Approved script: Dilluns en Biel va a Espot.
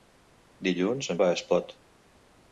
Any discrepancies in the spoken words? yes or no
yes